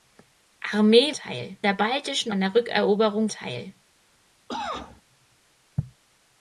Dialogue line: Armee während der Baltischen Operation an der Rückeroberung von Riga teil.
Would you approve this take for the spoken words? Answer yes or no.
no